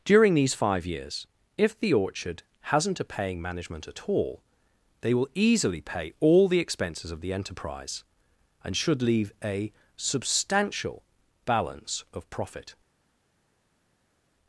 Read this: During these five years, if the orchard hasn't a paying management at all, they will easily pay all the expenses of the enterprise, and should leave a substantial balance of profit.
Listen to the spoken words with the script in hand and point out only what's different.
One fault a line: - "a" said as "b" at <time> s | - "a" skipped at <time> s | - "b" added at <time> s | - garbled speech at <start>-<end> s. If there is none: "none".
none